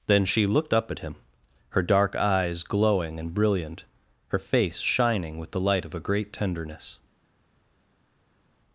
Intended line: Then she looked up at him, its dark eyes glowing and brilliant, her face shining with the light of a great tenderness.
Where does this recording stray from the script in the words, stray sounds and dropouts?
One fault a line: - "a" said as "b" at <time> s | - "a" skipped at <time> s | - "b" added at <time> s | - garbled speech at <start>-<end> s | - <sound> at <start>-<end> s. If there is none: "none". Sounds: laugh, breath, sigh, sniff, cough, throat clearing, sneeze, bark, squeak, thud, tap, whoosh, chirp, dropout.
- "its" said as "her" at 1.7 s